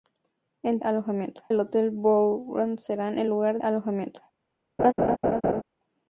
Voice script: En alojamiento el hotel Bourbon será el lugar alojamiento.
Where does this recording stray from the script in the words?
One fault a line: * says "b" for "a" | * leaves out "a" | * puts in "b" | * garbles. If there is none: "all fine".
all fine